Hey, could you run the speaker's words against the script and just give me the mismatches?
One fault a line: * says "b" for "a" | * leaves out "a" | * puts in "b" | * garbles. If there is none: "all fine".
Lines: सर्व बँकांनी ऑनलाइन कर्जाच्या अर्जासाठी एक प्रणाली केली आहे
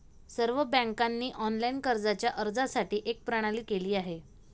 all fine